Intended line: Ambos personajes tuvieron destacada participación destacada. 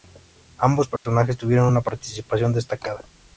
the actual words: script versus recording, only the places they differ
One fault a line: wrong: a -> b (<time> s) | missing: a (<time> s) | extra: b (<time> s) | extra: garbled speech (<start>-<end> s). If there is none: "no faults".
wrong: destacada -> una (1.7 s)